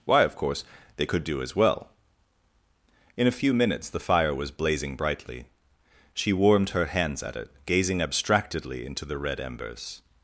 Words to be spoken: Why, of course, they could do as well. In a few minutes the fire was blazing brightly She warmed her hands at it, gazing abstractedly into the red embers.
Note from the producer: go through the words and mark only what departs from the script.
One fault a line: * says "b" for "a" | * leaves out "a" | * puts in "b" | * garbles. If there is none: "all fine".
all fine